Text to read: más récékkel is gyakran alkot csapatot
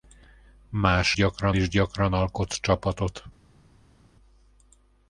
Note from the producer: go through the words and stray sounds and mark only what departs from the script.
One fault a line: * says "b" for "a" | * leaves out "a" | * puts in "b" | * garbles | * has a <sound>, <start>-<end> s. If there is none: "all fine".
* says "gyakran" for "récékkel"